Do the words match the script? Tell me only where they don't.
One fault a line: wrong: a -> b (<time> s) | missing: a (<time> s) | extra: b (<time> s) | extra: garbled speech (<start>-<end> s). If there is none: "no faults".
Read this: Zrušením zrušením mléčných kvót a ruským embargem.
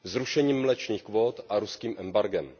missing: zrušením (0.6 s)